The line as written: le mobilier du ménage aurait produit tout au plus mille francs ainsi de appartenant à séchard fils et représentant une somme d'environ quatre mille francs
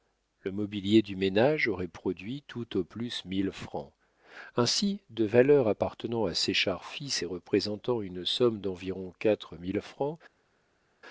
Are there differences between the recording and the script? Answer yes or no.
yes